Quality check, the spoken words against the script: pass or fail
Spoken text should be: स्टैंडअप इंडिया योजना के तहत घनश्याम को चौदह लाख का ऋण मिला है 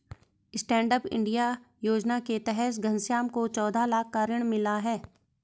pass